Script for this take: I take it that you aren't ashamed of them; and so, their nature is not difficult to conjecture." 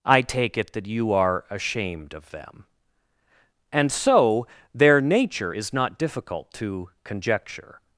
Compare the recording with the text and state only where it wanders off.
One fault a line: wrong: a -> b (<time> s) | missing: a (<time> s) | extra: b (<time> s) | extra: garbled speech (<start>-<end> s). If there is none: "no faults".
wrong: aren't -> are (1.1 s)